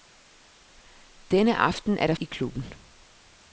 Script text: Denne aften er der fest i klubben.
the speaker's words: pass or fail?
fail